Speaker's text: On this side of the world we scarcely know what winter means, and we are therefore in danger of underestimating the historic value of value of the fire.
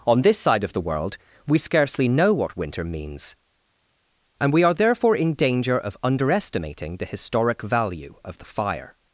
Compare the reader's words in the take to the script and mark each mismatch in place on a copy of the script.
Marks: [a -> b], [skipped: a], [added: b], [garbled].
On this side of the world we scarcely know what winter means, and we are therefore in danger of underestimating the historic value of [skipped: value of] the fire.